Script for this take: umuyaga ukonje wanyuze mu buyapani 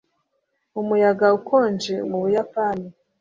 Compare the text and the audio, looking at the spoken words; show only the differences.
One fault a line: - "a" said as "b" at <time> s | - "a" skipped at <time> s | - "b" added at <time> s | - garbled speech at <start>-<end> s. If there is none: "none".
- "wanyuze" skipped at 1.9 s